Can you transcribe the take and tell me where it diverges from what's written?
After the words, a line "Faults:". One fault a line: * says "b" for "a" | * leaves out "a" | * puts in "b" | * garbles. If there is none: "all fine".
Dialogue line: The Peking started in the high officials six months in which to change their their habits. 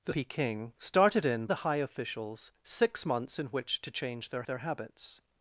The Peking started in the high officials six months in which to change their their habits.
Faults:
all fine